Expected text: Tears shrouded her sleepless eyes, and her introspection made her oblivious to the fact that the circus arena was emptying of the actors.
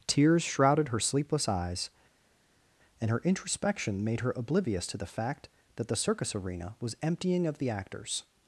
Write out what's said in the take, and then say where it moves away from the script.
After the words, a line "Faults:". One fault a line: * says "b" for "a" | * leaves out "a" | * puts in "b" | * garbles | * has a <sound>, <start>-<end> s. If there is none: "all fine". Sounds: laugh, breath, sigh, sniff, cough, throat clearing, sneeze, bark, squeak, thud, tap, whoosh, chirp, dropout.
Tears shrouded her sleepless eyes, and her introspection made her oblivious to the fact that the circus arena was emptying of the actors.
Faults:
all fine